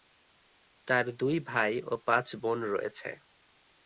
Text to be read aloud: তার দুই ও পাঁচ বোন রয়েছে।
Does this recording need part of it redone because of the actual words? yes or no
yes